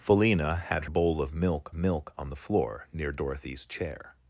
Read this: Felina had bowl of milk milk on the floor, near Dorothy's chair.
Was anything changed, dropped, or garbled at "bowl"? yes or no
no